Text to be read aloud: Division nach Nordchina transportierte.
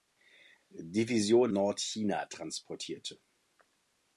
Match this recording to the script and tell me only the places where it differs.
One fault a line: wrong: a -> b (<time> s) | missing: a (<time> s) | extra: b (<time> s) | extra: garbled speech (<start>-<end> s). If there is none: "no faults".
missing: nach (1.5 s)